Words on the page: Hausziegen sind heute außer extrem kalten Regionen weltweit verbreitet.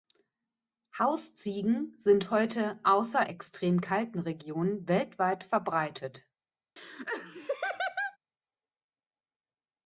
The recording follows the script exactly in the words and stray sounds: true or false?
false